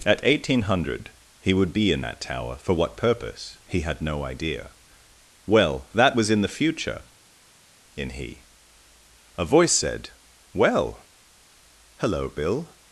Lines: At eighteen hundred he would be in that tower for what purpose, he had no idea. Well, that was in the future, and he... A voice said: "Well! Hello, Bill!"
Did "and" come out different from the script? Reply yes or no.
yes